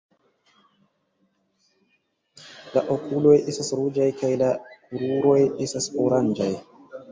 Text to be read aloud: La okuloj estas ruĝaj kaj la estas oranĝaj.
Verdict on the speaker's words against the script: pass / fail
fail